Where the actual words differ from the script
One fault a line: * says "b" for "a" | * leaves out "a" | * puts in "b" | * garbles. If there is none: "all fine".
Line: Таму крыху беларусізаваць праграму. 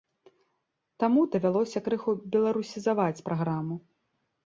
* puts in "давялося"